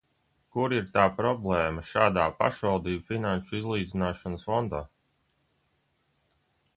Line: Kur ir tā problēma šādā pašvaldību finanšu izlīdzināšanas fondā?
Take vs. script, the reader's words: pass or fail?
pass